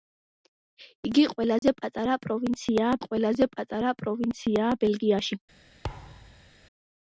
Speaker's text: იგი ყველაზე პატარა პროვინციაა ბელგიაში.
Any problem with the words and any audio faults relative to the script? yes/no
yes